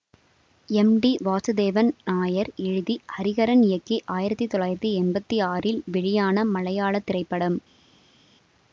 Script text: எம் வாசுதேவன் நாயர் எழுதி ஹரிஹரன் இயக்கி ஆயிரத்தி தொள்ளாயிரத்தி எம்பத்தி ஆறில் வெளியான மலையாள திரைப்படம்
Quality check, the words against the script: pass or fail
fail